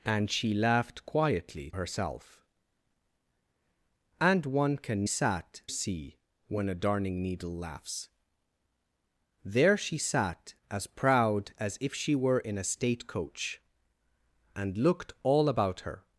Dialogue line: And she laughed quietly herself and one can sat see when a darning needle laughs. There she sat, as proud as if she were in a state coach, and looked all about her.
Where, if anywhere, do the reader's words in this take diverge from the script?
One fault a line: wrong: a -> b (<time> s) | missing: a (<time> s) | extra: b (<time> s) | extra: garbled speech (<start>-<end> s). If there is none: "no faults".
no faults